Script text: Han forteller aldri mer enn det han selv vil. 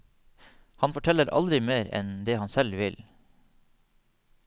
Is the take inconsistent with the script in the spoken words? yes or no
no